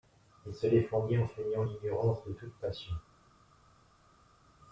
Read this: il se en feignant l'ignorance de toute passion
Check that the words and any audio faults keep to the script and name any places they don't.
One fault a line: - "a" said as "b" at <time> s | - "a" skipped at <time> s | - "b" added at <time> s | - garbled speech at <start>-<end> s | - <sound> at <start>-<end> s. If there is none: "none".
- "défendit" added at 0.7 s